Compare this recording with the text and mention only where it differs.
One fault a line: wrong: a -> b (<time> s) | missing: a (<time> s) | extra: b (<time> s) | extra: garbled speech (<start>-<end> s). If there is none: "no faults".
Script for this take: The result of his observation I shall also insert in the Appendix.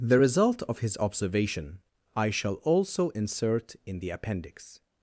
no faults